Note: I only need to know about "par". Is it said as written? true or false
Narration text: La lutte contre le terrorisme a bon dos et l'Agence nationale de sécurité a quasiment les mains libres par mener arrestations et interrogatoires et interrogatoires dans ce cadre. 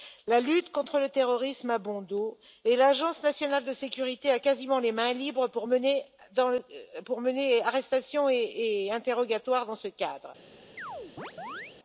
false